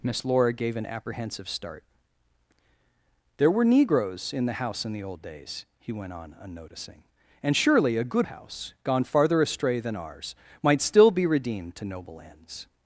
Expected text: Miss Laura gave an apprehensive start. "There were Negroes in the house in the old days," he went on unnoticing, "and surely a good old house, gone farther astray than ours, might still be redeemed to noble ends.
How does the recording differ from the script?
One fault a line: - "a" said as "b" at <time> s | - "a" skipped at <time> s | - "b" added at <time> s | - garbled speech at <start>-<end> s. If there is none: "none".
- "old" skipped at 8.3 s